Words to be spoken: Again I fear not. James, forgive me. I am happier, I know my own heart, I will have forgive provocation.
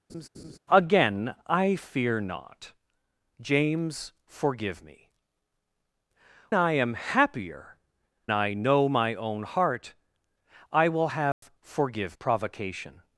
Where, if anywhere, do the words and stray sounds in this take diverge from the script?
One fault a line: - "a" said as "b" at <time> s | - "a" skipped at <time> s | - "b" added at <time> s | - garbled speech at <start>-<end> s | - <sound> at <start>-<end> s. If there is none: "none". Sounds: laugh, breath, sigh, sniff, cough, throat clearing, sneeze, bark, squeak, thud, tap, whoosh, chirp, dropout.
- laugh at 0.1-0.6 s
- dropout at 11.3-11.4 s